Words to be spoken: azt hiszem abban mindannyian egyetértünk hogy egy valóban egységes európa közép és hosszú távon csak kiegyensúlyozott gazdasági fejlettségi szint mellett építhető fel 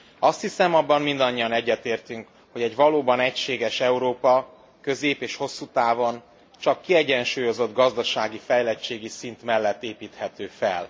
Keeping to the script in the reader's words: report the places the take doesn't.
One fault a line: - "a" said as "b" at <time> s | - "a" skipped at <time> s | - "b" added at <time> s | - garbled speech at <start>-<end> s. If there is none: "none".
none